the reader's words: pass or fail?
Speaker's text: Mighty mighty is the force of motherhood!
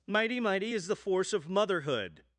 pass